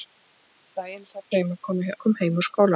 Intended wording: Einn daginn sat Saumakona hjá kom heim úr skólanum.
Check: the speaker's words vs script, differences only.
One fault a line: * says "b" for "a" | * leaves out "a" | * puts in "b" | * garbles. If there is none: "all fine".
all fine